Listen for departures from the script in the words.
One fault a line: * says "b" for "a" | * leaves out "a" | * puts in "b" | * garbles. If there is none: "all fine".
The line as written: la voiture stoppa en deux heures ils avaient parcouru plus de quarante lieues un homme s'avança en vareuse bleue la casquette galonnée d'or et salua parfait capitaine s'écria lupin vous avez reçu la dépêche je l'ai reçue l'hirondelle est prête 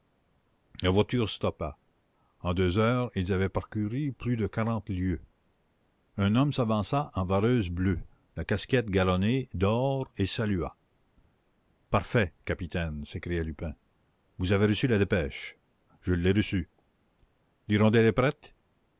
all fine